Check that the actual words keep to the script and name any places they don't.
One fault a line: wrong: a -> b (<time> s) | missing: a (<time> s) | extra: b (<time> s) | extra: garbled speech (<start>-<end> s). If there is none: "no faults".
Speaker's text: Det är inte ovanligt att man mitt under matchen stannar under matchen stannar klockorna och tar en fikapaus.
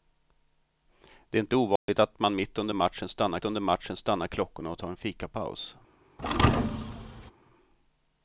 no faults